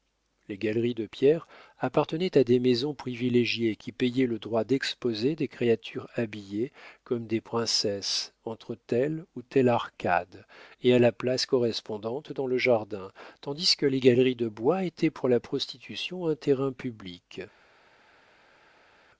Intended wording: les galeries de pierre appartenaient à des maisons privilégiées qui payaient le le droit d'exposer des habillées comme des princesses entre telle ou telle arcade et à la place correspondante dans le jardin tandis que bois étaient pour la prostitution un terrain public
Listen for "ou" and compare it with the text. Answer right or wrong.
right